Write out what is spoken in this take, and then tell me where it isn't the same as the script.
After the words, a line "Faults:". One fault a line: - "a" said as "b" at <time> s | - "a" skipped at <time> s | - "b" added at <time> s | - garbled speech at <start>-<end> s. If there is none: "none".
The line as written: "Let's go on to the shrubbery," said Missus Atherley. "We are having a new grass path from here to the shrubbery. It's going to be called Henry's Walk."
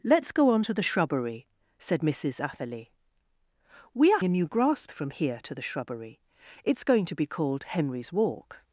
"Let's go on to the shrubbery," said Missus Atherley. "We are a new grass from here to the shrubbery. It's going to be called Henry's Walk."
Faults:
- "having" skipped at 4.2 s
- "path" skipped at 4.9 s